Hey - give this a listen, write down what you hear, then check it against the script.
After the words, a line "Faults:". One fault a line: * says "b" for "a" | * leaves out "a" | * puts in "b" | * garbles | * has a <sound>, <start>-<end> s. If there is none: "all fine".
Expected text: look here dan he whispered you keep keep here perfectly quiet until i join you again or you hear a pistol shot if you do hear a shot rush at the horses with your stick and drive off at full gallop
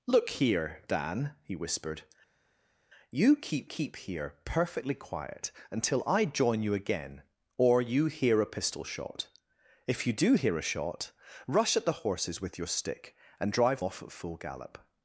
look here dan he whispered you keep keep here perfectly quiet until i join you again or you hear a pistol shot if you do hear a shot rush at the horses with your stick and drive off at full gallop
Faults:
all fine